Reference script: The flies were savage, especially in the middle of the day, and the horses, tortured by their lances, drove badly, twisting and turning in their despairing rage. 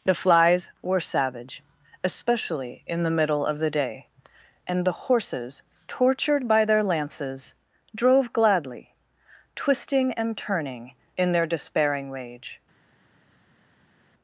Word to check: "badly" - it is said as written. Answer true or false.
false